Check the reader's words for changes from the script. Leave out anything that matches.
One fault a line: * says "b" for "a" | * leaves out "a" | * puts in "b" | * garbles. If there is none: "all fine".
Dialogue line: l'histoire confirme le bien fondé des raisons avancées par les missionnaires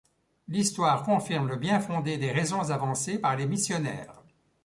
all fine